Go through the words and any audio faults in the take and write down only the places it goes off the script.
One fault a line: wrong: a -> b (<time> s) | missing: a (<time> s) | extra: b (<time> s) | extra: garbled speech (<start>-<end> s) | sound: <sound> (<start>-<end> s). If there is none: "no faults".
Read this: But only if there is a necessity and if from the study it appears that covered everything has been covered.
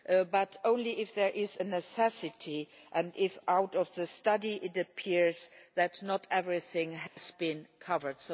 wrong: covered -> not (6.0 s)
sound: dropout (7.1-7.2 s)